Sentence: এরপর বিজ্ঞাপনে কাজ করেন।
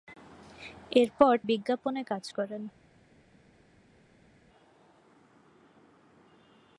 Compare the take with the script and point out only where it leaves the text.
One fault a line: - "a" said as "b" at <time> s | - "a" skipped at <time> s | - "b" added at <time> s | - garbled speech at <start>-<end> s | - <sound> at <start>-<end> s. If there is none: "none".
none